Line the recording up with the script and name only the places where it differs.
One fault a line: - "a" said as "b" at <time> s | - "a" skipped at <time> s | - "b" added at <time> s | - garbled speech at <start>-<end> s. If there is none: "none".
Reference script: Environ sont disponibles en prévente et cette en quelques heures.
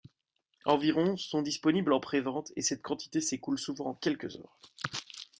- "quantité s'écoule souvent" added at 2.8 s